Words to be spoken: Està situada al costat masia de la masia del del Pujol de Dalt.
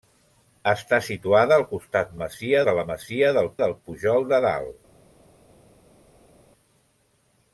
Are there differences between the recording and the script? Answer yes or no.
no